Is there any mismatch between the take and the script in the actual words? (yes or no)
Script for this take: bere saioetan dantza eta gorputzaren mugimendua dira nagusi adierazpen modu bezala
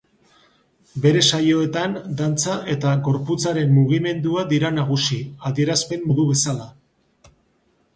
no